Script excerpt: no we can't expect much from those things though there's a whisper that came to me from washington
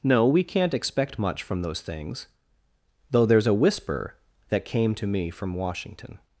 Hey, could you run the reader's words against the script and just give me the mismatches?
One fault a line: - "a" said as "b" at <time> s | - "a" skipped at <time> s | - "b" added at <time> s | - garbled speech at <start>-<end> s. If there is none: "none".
none